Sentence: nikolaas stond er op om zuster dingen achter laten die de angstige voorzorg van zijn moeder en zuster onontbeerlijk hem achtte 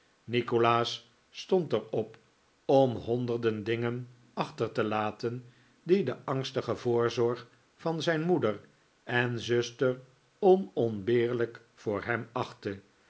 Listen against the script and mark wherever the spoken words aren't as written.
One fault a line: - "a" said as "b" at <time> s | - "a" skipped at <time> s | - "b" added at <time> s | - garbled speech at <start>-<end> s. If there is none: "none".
- "zuster" said as "honderden" at 3.0 s
- "te" added at 4.7 s
- "voor" added at 11.7 s